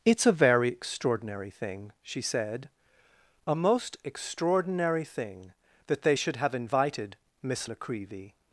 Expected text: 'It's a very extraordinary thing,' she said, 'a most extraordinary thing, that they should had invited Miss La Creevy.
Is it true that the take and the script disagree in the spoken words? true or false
true